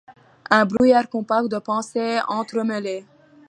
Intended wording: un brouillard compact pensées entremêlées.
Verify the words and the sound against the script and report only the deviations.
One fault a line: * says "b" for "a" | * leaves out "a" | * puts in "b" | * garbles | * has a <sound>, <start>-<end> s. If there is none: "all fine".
* has a dropout, 0.8-0.8 s
* puts in "de"